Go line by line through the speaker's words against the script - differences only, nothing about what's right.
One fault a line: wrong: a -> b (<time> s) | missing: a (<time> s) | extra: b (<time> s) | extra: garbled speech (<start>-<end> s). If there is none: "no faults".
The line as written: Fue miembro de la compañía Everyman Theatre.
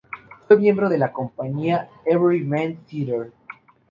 no faults